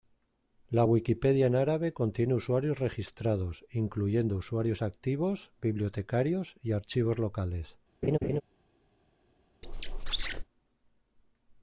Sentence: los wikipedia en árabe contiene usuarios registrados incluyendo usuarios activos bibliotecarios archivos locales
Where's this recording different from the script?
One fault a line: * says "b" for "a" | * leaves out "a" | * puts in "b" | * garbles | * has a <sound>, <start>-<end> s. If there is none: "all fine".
* says "la" for "los"
* puts in "y"
* has a laugh, 8.0-8.4 s
* has a squeak, 9.6-10.4 s